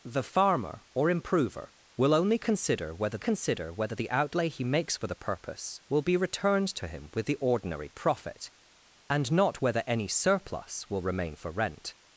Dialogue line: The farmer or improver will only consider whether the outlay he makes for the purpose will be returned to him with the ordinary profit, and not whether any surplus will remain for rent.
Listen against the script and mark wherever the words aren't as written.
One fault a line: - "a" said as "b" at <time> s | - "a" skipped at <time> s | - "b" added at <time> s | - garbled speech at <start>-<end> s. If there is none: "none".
- "consider whether" added at 3.2 s